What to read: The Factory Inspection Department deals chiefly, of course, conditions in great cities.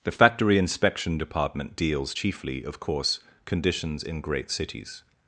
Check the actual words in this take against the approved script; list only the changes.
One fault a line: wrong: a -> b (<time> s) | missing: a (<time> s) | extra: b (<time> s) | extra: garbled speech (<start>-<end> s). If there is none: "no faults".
no faults